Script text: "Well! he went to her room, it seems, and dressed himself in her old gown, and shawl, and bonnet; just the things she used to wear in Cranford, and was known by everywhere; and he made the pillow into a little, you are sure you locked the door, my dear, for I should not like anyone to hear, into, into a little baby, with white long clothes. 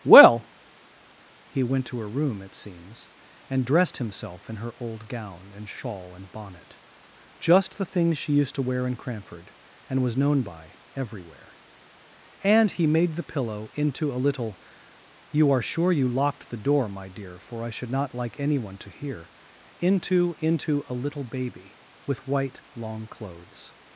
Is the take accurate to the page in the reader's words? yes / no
yes